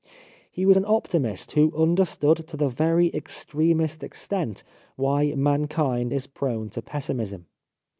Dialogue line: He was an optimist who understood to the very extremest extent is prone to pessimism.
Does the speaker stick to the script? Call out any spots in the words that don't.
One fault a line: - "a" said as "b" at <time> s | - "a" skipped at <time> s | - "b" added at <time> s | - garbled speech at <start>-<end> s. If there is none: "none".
- "why mankind" added at 5.0 s